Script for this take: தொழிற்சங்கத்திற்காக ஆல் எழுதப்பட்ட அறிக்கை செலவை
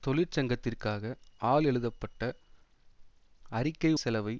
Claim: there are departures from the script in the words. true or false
false